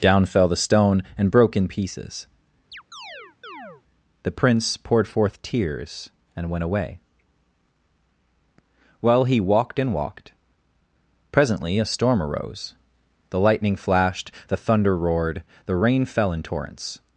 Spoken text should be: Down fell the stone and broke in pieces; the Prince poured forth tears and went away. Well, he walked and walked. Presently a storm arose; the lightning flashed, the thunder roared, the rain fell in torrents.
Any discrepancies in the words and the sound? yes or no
yes